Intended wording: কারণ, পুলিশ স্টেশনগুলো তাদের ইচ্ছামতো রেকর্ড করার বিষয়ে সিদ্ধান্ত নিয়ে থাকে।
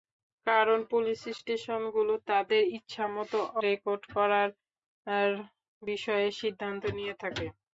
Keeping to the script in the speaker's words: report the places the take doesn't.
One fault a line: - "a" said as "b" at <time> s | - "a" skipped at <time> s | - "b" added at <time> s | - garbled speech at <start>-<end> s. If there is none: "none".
none